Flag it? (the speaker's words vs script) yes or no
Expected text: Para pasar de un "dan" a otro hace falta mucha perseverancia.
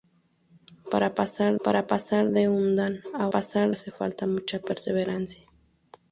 yes